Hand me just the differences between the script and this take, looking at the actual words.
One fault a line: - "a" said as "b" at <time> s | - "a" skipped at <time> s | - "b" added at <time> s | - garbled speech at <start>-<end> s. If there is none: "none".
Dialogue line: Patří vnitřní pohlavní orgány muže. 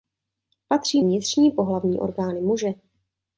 none